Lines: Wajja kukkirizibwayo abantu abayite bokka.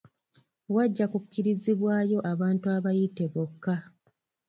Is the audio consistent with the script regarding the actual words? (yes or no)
yes